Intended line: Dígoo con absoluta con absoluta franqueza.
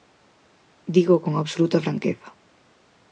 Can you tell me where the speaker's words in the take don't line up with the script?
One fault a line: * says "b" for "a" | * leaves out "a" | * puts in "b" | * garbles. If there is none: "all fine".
* leaves out "con absoluta"